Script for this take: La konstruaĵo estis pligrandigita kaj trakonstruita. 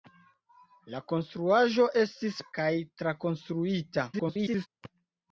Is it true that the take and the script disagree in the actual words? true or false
true